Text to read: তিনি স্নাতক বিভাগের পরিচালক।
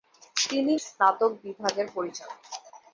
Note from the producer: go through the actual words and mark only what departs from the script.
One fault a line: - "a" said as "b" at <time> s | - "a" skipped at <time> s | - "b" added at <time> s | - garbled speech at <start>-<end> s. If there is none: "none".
none